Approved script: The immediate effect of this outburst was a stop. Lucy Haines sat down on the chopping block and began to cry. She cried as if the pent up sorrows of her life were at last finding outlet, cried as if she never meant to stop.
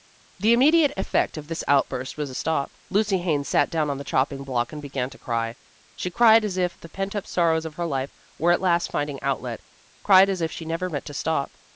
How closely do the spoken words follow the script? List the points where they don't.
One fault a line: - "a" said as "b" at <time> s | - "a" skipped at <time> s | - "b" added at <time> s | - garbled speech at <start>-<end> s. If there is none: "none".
none